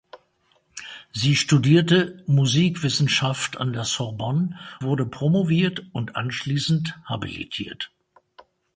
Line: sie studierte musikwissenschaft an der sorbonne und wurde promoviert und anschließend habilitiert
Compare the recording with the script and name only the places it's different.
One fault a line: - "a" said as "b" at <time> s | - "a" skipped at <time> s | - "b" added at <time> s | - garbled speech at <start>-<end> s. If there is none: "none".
- "und" skipped at 4.6 s